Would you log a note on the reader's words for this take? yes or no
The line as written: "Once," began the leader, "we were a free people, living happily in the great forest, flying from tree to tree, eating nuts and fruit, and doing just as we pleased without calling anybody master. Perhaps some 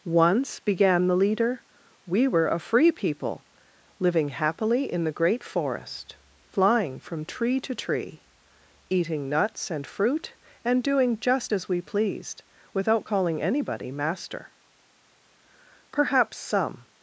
no